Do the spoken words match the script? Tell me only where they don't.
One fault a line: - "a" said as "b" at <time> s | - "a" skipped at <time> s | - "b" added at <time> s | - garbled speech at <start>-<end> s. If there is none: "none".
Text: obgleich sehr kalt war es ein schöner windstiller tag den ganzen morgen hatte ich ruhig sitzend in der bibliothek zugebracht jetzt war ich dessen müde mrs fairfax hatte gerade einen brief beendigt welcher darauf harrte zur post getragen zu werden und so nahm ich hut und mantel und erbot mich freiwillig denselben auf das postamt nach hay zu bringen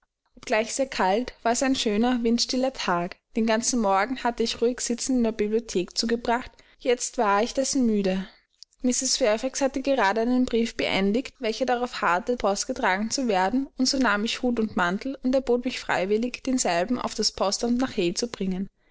- "zur" skipped at 12.4 s